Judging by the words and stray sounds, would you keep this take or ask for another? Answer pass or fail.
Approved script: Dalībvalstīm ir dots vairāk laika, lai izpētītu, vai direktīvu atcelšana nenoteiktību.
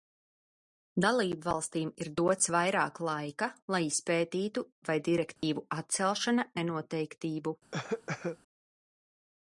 fail